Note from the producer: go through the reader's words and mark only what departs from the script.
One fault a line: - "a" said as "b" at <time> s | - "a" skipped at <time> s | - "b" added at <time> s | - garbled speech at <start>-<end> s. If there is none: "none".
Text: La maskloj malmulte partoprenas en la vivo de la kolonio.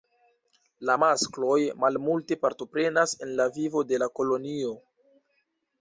none